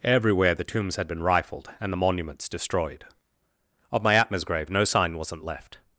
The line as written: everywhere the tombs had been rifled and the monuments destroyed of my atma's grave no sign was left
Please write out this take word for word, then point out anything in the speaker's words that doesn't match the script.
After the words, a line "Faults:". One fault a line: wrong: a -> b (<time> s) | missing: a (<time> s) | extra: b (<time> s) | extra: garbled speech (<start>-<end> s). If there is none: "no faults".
everywhere the tombs had been rifled and the monuments destroyed of my atma's grave no sign wasn't left
Faults:
wrong: was -> wasn't (5.2 s)